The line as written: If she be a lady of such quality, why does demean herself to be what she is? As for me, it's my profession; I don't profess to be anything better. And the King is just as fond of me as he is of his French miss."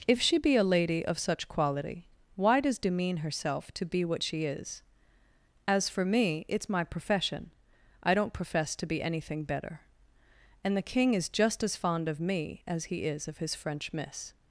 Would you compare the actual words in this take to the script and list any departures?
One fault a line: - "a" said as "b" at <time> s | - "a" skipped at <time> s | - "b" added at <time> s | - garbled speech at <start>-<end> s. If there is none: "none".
none